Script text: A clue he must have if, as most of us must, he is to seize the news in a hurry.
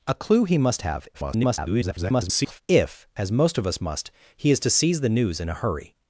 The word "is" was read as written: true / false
true